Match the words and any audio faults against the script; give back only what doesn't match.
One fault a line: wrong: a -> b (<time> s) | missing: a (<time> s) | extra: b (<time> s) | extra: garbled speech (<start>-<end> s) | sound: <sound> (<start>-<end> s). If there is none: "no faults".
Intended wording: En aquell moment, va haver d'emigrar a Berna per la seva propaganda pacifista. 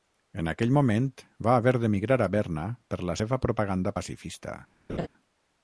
sound: laugh (4.9-5.1 s)